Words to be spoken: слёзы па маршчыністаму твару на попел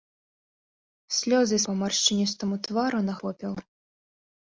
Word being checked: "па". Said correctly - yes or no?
yes